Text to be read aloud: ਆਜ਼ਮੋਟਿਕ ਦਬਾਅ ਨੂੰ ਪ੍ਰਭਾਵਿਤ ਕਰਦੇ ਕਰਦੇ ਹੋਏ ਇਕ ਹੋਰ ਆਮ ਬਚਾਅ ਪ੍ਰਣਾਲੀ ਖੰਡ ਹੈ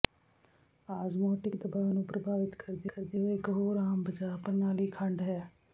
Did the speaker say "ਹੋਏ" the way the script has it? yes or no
yes